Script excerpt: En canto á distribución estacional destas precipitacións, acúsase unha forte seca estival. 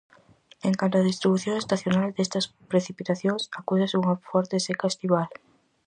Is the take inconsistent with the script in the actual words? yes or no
no